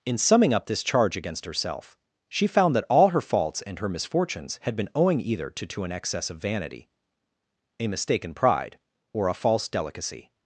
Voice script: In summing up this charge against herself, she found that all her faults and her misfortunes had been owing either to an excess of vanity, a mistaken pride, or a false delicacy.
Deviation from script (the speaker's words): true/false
true